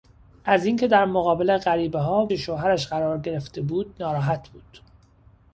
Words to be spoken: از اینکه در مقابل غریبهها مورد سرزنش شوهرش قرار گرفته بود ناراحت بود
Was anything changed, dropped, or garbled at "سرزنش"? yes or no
yes